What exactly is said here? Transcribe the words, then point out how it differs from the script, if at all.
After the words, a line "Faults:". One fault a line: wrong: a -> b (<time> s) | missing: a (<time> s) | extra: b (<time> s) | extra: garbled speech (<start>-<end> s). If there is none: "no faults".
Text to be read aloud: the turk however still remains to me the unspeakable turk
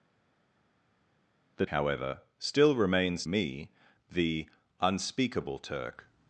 the however still remains me the unspeakable turk
Faults:
missing: turk (1.7 s)
missing: to (3.3 s)